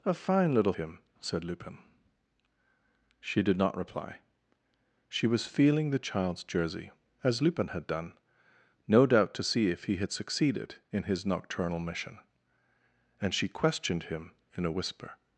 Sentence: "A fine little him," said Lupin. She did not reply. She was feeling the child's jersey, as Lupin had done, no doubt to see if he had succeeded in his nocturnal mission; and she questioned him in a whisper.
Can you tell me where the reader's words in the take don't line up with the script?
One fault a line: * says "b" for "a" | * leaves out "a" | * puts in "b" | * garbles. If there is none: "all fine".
all fine